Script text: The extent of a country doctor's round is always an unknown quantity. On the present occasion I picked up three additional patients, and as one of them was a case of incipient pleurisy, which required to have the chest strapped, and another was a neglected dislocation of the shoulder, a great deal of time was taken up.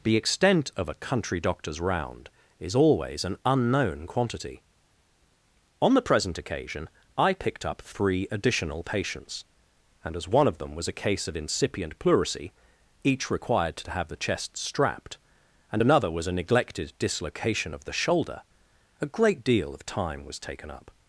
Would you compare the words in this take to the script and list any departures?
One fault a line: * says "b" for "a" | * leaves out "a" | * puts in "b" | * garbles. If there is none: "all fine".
* says "each" for "which"